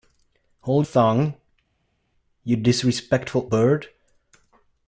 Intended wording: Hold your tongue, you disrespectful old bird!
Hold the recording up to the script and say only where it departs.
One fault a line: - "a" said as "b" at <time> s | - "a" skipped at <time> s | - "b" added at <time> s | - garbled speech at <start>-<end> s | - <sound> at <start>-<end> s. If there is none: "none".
- "your" skipped at 0.9 s
- "old" skipped at 3.5 s